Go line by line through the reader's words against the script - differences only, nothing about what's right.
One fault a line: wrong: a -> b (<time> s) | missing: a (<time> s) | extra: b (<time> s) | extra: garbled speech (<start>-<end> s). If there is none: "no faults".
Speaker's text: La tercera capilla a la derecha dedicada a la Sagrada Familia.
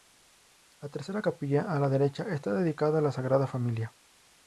extra: está (2.3 s)